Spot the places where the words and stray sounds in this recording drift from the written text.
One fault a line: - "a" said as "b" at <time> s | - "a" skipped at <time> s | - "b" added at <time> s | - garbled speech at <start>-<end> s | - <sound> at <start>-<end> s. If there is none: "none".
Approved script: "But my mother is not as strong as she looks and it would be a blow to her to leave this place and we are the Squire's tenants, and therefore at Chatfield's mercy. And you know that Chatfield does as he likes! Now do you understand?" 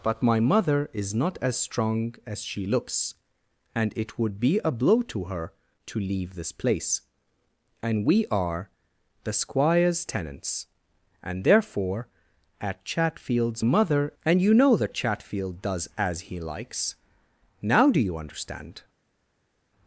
- "mercy" said as "mother" at 13.6 s